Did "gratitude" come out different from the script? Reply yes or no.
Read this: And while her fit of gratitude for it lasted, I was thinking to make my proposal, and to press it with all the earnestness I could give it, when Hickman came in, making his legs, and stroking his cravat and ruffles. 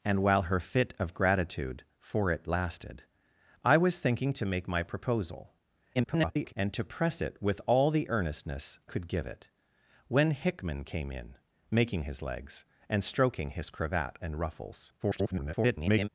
no